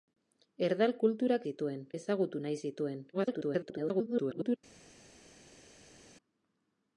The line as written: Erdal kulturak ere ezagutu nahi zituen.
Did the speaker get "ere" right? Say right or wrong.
wrong